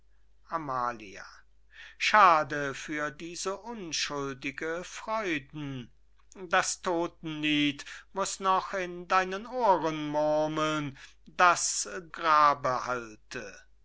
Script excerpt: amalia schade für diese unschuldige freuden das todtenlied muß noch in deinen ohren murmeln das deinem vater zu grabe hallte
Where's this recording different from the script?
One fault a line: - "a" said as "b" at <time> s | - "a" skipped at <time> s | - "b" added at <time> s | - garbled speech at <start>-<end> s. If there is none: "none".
- "deinem vater zu" skipped at 11.9 s